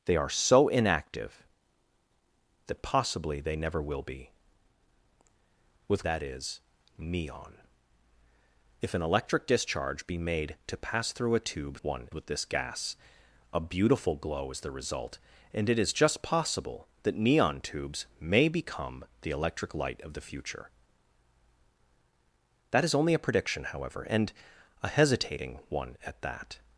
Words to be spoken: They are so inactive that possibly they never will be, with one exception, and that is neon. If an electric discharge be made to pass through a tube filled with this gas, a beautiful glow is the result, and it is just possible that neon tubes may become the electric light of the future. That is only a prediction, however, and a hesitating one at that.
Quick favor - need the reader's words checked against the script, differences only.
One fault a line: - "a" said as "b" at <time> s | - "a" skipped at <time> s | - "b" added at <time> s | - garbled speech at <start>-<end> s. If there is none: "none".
- "one exception and" skipped at 6.1 s
- "filled" said as "one" at 11.8 s